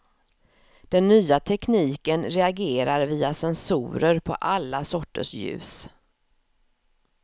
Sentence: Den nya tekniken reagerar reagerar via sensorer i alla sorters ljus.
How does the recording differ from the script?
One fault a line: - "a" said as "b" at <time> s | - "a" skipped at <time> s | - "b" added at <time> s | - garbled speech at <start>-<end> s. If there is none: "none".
- "reagerar" skipped at 3.0 s
- "i" said as "på" at 4.2 s